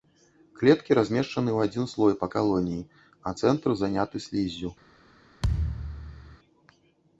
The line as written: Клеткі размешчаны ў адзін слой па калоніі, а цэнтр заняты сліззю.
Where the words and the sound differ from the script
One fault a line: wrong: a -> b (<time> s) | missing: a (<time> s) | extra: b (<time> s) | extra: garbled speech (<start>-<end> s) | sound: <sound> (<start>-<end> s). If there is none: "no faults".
sound: thud (5.4-6.4 s)